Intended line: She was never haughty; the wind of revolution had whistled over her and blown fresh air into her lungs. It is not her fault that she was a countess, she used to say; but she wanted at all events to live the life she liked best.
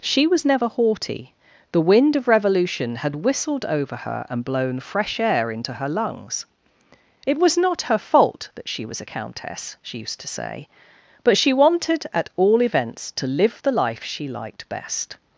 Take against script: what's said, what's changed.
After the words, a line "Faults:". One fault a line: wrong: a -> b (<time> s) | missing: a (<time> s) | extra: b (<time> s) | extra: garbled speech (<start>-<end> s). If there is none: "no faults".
She was never haughty; the wind of revolution had whistled over her and blown fresh air into her lungs. It was not her fault that she was a countess, she used to say; but she wanted at all events to live the life she liked best.
Faults:
wrong: is -> was (7.4 s)